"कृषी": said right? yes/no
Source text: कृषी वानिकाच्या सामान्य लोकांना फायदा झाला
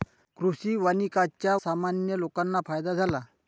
yes